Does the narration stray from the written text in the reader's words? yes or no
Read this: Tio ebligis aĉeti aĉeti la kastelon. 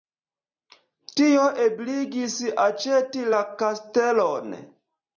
yes